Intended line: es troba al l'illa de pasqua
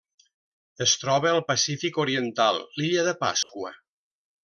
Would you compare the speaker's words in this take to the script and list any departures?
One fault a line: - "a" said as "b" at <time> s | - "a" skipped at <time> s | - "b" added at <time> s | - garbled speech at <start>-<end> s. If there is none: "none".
- "pacífic oriental" added at 1.5 s